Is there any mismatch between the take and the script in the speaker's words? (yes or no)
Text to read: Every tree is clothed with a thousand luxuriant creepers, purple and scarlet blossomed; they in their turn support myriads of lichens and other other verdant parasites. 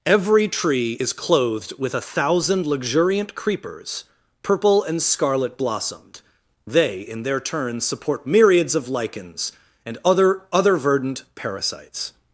no